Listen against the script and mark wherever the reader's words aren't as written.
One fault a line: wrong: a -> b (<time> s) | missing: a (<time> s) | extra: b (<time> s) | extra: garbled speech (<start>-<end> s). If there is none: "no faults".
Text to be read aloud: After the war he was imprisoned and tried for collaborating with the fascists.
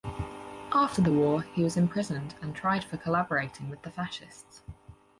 no faults